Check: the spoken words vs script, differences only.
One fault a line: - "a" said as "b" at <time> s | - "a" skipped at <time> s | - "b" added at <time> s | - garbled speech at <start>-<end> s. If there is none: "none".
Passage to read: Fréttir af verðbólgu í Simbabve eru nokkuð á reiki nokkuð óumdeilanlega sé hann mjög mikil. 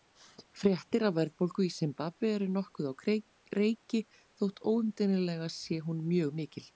- "nokkuð" said as "þótt" at 4.4 s
- "hann" said as "hún" at 5.9 s